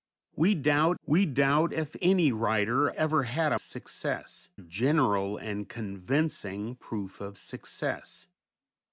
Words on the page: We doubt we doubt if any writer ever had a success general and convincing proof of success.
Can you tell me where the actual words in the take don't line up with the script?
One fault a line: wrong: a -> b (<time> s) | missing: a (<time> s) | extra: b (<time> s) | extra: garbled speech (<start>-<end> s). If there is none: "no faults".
no faults